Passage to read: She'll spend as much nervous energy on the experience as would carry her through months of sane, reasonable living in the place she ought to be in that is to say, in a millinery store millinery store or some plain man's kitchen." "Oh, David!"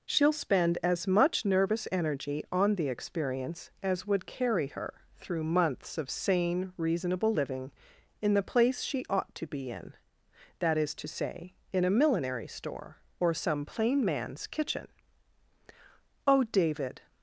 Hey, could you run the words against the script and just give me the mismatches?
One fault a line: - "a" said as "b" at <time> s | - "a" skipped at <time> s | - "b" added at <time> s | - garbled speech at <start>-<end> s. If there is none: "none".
- "millinery store" skipped at 13.0 s